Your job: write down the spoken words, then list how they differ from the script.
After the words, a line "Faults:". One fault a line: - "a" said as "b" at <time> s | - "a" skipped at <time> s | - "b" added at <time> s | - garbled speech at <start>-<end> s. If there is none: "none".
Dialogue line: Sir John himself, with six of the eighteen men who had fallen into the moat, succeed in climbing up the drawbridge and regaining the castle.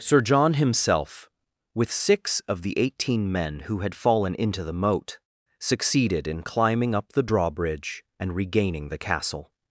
Sir John himself, with six of the eighteen men who had fallen into the moat, succeeded in climbing up the drawbridge and regaining the castle.
Faults:
- "succeed" said as "succeeded" at 5.6 s